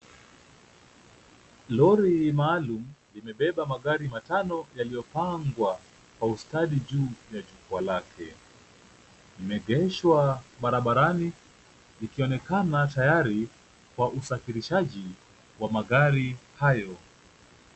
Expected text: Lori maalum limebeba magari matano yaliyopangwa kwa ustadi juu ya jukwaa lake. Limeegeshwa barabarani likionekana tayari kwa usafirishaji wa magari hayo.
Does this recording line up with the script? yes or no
yes